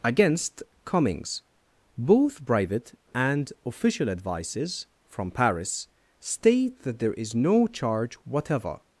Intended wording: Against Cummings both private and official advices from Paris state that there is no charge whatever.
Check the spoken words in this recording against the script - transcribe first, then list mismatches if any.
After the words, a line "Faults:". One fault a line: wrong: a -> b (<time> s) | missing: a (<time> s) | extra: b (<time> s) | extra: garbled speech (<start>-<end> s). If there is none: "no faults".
Against Cummings both private and official advices from Paris state that there is no charge whatever.
Faults:
no faults